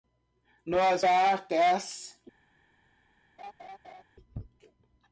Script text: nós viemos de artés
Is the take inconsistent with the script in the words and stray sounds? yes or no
yes